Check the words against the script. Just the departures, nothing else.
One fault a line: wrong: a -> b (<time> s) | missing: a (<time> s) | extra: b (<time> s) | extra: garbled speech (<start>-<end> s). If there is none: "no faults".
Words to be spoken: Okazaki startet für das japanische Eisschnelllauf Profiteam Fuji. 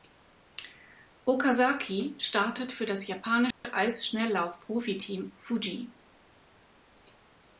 no faults